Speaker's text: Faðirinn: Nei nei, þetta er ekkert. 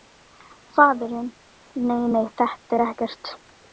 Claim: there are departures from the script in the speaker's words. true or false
false